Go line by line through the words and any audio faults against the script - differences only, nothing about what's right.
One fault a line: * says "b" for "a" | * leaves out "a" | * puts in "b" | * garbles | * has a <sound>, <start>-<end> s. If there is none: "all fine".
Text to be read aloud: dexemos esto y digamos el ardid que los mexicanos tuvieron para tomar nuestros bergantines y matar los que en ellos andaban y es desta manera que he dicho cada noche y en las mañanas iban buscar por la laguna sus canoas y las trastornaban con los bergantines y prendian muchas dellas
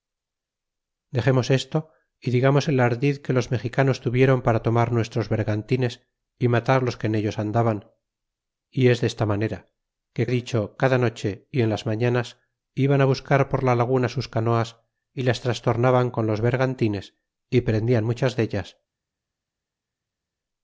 all fine